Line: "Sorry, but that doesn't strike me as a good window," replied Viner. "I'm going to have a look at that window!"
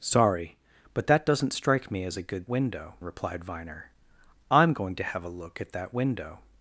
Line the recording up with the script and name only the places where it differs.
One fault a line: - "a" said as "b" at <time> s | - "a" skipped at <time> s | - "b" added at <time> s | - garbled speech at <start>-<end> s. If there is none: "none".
none